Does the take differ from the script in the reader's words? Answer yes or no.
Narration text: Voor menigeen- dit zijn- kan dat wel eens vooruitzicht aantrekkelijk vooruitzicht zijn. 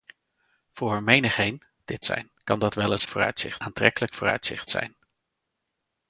no